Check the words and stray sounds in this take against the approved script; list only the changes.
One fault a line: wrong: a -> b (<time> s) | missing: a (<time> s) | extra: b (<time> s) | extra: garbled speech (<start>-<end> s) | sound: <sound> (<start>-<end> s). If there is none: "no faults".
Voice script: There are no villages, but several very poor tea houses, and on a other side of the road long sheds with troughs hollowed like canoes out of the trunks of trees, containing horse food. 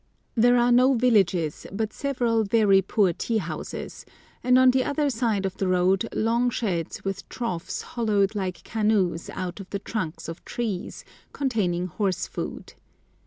wrong: a -> the (4.7 s)